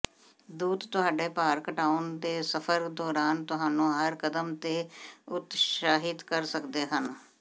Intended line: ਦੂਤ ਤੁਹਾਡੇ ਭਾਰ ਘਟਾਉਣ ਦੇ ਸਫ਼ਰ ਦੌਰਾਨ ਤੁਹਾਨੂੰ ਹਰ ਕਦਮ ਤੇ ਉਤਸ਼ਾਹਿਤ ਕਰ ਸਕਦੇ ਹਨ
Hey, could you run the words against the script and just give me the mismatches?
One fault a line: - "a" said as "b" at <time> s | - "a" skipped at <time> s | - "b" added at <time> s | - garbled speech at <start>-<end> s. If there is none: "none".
none